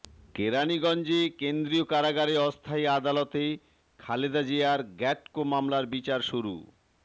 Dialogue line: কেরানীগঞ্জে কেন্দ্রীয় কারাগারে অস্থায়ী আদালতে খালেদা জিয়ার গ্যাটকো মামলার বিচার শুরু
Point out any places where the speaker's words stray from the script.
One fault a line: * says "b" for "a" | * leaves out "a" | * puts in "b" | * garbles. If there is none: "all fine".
all fine